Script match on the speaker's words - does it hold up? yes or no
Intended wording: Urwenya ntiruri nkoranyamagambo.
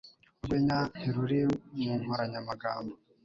no